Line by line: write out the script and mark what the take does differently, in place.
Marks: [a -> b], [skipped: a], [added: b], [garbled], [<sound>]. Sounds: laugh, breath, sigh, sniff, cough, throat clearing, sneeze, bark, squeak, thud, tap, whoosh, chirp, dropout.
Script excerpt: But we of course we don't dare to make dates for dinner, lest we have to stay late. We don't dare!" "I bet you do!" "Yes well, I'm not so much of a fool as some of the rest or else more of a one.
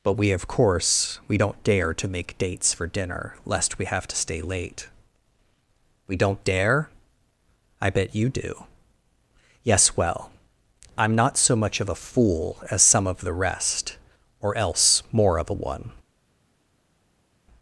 But we of course we don't dare to make dates for dinner, lest we have to stay late. We don't dare!" "I bet you do!" "Yes well, I'm not so much of a fool as some of the rest or else more of a one.